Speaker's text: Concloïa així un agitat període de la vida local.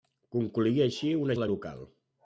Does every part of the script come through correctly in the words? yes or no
no